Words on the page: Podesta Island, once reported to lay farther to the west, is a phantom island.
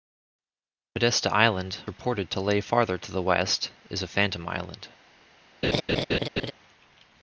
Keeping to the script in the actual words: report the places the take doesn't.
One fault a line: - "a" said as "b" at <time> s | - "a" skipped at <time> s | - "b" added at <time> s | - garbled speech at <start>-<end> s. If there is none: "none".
- "once" skipped at 1.8 s